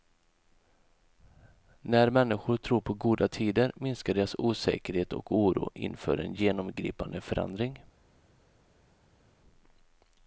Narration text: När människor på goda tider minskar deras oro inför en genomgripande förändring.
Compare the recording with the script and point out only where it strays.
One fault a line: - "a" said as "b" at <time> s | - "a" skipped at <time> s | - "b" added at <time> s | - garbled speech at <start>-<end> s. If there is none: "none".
- "tror" added at 2.6 s
- "osäkerhet och" added at 4.4 s